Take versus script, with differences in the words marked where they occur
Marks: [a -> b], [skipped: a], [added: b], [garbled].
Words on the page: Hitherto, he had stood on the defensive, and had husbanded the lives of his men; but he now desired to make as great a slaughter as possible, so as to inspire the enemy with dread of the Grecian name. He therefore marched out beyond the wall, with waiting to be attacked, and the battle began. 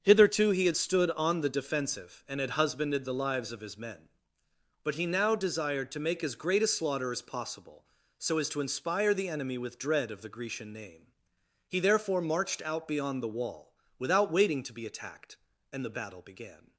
Hitherto, he had stood on the defensive, and had husbanded the lives of his men; but he now desired to make as great a slaughter as possible, so as to inspire the enemy with dread of the Grecian name. He therefore marched out beyond the wall, [with -> without] waiting to be attacked, and the battle began.